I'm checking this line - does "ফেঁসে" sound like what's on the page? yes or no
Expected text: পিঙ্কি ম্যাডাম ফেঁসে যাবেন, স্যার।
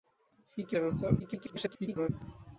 no